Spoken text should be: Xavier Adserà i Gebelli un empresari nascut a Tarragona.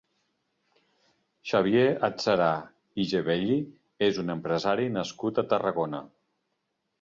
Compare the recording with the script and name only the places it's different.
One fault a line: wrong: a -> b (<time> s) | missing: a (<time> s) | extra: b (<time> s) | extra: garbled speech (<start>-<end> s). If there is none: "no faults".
extra: és (4.1 s)